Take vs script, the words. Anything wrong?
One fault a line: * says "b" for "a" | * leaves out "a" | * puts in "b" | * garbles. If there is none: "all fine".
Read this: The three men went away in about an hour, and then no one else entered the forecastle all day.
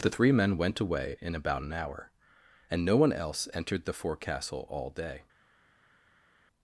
* leaves out "then"